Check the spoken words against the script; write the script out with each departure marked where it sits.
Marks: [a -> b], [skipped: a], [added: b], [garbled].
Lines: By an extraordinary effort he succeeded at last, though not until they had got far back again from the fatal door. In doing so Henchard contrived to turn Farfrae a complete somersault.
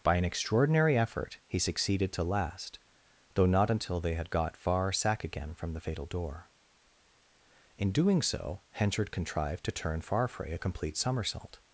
By an extraordinary effort he succeeded [at -> to] last, though not until they had got far [back -> sack] again from the fatal door. In doing so Henchard contrived to turn Farfrae a complete somersault.